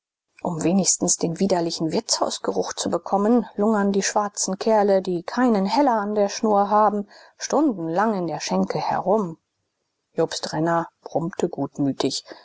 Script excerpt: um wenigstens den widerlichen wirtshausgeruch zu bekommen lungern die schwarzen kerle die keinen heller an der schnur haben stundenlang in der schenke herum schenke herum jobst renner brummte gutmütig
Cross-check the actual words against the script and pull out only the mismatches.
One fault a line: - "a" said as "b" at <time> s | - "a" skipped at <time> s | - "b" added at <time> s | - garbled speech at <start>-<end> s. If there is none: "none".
- "schenke herum" skipped at 9.4 s